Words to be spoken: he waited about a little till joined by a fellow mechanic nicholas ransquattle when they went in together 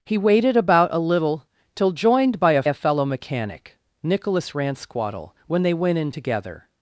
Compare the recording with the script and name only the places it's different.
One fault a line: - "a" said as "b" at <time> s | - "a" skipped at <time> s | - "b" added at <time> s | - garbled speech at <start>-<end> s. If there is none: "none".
- "a" added at 2.6 s